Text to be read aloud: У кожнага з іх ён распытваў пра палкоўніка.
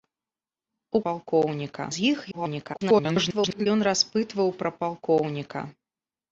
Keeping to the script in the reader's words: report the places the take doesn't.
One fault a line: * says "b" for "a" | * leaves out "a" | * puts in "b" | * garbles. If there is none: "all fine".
* says "палкоўніка" for "кожнага"
* garbles